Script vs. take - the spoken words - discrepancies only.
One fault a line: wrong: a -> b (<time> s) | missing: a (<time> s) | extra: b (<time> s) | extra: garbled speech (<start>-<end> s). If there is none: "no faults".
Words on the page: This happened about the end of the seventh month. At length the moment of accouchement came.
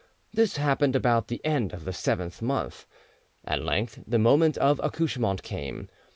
no faults